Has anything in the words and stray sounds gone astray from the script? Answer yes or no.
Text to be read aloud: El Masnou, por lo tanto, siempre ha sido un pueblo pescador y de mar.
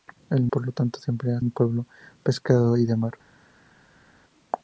yes